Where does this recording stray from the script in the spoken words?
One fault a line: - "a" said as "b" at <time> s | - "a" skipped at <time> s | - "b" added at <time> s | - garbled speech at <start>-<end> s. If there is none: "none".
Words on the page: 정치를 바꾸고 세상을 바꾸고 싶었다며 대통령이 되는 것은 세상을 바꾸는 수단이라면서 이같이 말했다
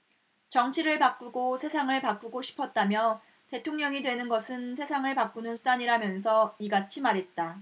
none